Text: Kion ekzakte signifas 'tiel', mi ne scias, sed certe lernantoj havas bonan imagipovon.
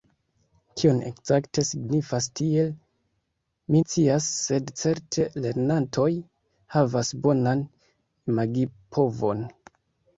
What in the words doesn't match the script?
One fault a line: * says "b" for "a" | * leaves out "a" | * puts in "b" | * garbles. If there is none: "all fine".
* leaves out "ne"